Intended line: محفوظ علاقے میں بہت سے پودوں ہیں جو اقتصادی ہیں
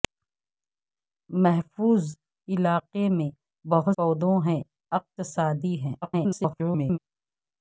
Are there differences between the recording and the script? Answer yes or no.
yes